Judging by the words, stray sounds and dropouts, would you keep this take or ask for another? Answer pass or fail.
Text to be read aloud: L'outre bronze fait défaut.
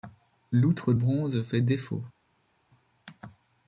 pass